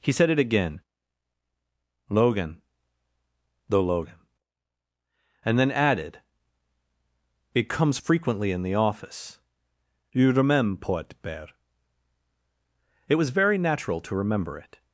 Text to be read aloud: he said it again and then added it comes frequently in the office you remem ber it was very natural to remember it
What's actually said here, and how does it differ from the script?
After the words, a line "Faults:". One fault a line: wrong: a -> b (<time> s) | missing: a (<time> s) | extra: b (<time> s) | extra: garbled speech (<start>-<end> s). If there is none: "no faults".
he said it again logan the logan and then added it comes frequently in the office you remember port bear it was very natural to remember it
Faults:
extra: logan the logan (2.1 s)
wrong: remem ber -> remember port bear (10.3 s)